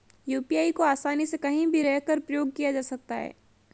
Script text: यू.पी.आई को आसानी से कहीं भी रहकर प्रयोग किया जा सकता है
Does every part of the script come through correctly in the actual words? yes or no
yes